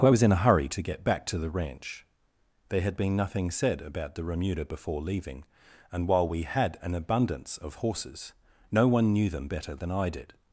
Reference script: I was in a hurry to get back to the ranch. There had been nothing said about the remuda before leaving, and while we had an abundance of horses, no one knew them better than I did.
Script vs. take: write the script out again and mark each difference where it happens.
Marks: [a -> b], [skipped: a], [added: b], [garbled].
I was in a hurry to get back to the ranch. There had been nothing said about the remuda before leaving, and while we had an abundance of horses, no one knew them better than I did.